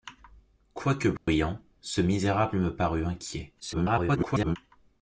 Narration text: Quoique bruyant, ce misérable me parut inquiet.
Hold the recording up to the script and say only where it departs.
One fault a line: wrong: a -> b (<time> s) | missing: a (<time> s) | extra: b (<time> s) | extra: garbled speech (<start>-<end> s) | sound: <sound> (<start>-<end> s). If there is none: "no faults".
sound: dropout (1.2-1.3 s)
extra: garbled speech (3.6-4.6 s)